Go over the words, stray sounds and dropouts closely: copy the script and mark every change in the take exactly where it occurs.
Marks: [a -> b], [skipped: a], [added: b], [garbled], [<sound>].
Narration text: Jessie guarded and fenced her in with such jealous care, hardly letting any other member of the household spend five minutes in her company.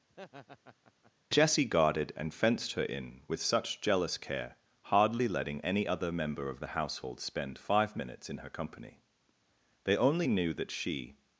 [laugh] Jessie guarded and fenced her in with such jealous care, hardly letting any other member of the household spend five minutes in her company. [added: They only knew that she]